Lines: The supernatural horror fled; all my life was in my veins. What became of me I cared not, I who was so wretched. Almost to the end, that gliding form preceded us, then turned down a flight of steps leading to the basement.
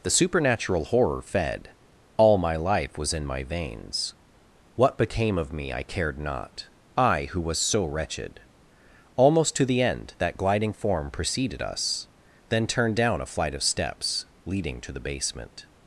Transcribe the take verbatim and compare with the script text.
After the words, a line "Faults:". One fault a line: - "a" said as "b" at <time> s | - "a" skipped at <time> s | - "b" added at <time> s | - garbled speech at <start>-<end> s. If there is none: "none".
The supernatural horror fed; all my life was in my veins. What became of me I cared not, I who was so wretched. Almost to the end, that gliding form preceded us, then turned down a flight of steps leading to the basement.
Faults:
- "fled" said as "fed" at 1.2 s